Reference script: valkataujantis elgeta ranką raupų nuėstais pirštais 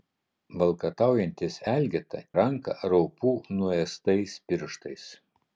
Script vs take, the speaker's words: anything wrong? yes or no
no